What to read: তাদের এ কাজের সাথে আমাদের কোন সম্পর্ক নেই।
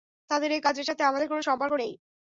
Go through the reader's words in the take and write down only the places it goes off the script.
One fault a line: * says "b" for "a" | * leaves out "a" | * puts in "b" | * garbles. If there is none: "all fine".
all fine